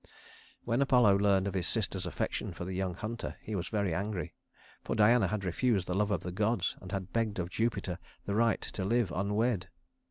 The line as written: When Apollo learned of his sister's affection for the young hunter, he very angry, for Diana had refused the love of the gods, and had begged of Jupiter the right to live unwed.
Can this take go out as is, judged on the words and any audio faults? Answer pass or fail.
fail